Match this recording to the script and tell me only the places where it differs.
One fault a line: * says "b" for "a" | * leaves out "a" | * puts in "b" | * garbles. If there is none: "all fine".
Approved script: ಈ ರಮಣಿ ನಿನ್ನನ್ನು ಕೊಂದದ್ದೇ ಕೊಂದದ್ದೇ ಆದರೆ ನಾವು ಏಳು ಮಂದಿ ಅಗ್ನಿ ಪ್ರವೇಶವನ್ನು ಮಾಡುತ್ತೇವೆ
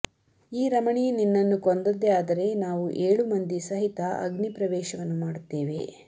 * leaves out "ಕೊಂದದ್ದೇ"
* puts in "ಸಹಿತ"